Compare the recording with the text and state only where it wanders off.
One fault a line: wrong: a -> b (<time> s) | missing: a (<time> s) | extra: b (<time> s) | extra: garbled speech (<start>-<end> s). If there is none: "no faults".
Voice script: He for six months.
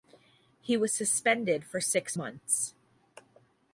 extra: was suspended (0.8 s)